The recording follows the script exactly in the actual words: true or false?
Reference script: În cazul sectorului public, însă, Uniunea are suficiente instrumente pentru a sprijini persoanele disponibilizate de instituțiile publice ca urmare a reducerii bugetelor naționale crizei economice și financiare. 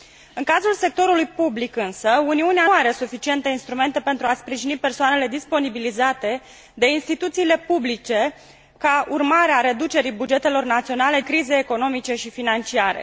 true